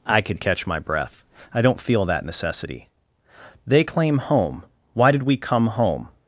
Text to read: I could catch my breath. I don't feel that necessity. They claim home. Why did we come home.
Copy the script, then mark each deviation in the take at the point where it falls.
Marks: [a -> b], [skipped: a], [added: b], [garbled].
I could catch my breath. I don't feel that necessity. They claim home. Why did we come home.